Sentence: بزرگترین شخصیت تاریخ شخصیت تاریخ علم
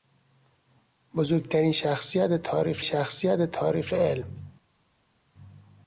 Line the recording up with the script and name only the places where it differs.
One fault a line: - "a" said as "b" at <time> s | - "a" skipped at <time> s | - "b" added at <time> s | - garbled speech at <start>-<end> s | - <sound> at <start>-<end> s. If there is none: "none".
none